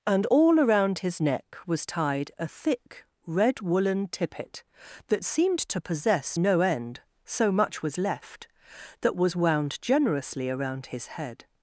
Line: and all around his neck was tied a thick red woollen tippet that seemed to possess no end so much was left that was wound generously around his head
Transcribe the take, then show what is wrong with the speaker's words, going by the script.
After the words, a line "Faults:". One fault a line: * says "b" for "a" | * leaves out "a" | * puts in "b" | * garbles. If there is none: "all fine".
and all around his neck was tied a thick red woollen tippet that seemed to possess no end so much was left that was wound generously around his head
Faults:
all fine